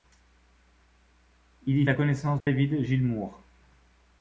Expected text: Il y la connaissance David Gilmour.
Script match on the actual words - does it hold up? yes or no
yes